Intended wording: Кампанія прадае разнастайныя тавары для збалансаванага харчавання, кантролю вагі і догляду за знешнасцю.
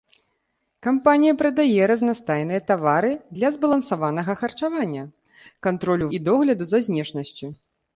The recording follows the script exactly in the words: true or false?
false